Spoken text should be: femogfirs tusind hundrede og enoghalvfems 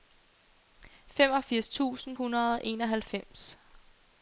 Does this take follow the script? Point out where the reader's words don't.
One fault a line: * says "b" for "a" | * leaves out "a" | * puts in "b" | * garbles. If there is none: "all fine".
all fine